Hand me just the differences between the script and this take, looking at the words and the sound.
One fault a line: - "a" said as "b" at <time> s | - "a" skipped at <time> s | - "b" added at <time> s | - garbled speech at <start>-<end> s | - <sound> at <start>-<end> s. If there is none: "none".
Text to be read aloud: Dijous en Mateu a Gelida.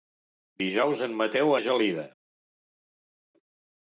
none